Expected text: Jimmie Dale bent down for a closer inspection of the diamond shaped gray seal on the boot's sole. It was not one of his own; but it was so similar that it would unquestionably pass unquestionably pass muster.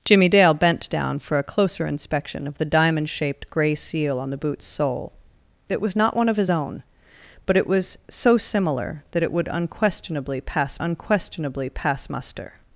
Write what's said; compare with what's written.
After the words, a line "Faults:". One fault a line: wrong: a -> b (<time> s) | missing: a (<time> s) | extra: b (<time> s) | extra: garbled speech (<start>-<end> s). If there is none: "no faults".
Jimmie Dale bent down for a closer inspection of the diamond shaped gray seal on the boot's sole. It was not one of his own; but it was so similar that it would unquestionably pass unquestionably pass muster.
Faults:
no faults